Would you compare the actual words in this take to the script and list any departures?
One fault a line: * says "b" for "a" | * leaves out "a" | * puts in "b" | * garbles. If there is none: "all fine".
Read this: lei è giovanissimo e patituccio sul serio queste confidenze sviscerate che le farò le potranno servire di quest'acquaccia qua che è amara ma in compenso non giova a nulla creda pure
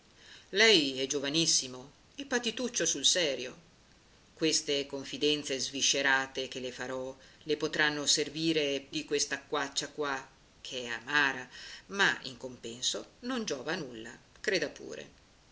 all fine